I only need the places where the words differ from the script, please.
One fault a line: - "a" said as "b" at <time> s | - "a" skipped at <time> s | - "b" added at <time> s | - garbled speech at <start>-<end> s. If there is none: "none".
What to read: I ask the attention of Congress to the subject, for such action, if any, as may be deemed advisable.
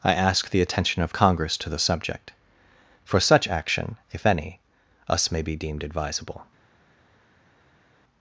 - "as" said as "us" at 5.1 s